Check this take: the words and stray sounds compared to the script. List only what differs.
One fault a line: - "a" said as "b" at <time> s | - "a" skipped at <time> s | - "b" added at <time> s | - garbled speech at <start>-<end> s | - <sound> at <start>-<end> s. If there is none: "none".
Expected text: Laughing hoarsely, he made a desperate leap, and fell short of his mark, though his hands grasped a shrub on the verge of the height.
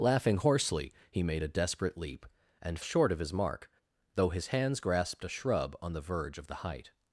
- "fell" skipped at 2.8 s